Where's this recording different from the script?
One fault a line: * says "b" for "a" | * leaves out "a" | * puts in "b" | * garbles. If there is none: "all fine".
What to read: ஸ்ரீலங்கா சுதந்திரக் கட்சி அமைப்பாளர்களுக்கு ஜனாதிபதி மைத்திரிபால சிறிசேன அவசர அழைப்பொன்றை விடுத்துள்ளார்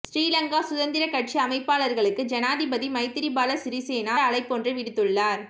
* leaves out "அவசர"